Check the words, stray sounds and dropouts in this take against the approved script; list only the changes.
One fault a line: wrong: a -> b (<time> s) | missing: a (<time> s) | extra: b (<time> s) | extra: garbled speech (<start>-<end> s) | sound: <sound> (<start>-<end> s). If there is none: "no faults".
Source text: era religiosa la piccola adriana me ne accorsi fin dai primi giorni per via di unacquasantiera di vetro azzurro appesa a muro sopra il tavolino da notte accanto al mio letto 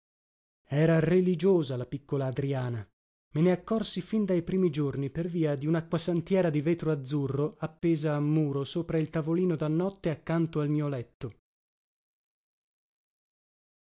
no faults